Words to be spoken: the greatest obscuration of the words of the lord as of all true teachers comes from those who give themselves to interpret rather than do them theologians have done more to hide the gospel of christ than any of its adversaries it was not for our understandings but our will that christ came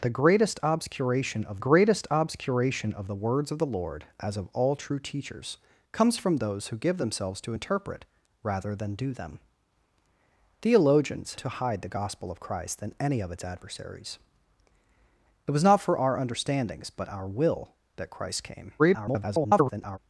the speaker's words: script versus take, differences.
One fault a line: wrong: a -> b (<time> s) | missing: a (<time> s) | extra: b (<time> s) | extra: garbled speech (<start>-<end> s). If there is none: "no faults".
extra: greatest obscuration of (1.6 s)
missing: have done more (11.3 s)
extra: garbled speech (18.8-20.0 s)